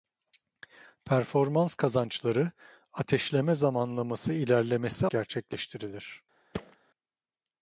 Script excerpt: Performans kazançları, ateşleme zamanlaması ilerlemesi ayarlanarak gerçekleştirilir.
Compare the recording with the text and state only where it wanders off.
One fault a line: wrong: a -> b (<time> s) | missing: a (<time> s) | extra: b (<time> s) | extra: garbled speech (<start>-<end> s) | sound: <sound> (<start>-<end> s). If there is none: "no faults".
missing: ayarlanarak (5.1 s)
sound: thud (6.5-6.8 s)